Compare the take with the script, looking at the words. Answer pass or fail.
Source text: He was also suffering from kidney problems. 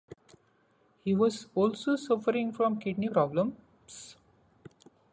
pass